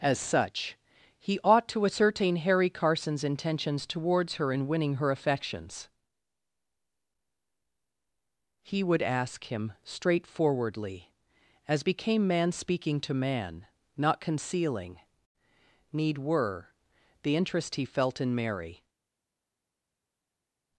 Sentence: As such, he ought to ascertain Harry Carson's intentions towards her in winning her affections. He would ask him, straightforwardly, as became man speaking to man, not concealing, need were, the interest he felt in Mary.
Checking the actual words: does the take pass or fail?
pass